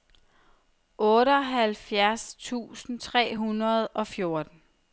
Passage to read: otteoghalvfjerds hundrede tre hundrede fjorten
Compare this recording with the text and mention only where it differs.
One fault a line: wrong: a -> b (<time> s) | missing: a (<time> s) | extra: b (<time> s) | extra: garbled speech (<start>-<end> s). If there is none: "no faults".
wrong: hundrede -> tusind (2.4 s)
extra: og (3.9 s)